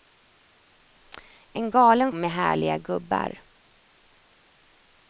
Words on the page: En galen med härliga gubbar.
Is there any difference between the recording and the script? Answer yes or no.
no